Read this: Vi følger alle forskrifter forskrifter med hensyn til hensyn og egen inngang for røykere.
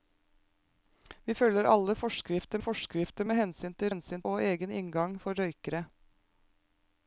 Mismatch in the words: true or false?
false